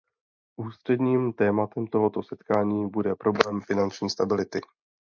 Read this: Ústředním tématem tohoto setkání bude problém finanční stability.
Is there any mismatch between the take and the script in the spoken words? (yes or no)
no